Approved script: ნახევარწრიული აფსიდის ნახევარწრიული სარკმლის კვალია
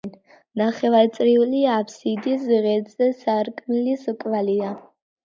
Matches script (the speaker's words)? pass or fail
fail